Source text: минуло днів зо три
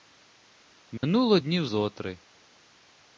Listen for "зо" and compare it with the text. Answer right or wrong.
right